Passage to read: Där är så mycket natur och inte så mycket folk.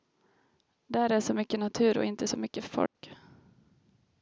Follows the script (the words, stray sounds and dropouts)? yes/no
no